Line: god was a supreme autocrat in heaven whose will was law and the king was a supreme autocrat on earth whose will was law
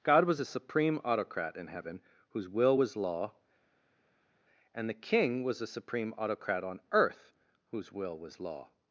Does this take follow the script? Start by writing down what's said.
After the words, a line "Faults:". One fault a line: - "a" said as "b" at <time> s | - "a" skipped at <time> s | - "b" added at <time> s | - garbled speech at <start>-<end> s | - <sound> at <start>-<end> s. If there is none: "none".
god was a supreme autocrat in heaven whose will was law and the king was a supreme autocrat on earth whose will was law
Faults:
none